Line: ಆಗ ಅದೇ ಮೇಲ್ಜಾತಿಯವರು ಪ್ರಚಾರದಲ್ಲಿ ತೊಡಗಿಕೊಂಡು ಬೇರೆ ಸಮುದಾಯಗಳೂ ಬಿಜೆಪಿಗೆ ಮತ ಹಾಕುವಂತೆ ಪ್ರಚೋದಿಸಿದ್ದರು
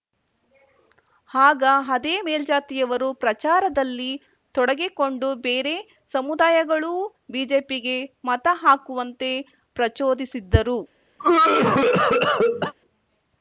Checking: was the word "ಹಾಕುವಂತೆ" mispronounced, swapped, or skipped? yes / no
no